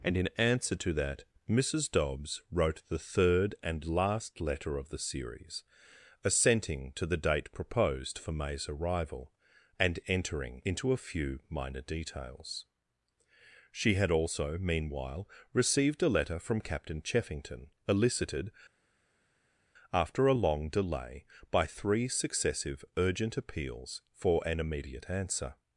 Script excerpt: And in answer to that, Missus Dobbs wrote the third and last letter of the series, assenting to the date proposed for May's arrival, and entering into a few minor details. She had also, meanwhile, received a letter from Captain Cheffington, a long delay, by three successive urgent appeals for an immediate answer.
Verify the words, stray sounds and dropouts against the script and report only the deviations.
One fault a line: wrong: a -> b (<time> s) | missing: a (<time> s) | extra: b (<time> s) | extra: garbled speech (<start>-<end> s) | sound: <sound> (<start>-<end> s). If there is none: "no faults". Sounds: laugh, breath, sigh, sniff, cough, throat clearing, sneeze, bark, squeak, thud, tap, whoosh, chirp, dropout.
extra: elicited after (17.9 s)